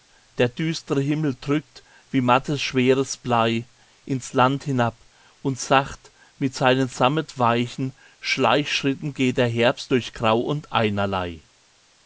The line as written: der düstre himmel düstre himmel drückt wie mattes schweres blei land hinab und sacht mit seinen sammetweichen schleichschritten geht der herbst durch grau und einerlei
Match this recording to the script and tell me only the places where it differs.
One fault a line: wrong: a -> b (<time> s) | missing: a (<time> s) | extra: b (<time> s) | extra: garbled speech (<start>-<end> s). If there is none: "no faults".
missing: düstre himmel (1.4 s)
extra: ins (4.0 s)